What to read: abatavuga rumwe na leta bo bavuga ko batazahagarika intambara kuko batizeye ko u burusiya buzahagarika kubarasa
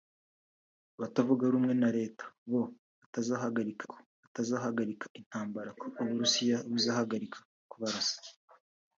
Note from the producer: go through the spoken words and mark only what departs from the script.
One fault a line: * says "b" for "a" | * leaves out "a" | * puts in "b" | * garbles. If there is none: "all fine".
* says "batazahagarika" for "bavuga"
* leaves out "kuko batizeye"